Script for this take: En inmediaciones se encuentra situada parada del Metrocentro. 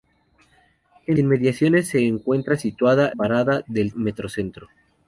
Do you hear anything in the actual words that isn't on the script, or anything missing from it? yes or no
no